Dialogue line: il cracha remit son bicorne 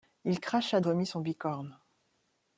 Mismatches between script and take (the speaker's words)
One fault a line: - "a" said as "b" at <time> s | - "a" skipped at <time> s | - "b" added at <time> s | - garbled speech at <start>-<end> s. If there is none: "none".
none